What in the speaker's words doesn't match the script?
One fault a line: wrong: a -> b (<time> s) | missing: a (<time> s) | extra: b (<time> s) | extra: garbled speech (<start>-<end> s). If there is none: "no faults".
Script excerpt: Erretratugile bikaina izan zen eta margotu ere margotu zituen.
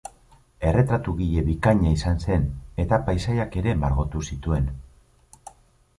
wrong: margotu -> paisaiak (3.1 s)